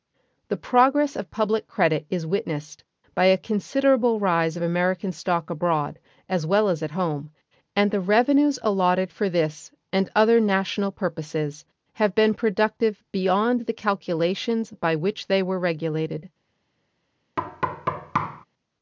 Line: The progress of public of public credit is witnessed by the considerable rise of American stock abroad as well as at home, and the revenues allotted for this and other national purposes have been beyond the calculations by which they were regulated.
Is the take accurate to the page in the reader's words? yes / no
no